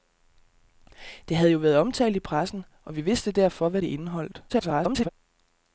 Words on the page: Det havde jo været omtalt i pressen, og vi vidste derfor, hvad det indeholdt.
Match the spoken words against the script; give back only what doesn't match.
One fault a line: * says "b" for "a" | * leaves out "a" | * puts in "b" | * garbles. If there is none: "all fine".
* garbles